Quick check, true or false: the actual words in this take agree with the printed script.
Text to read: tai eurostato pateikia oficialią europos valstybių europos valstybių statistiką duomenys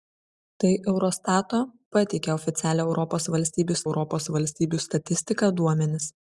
true